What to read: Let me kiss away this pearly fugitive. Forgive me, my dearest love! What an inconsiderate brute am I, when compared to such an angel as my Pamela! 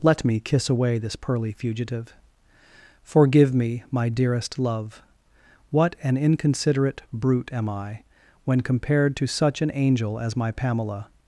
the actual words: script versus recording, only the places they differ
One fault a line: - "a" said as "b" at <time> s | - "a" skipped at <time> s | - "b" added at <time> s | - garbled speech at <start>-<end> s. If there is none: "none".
none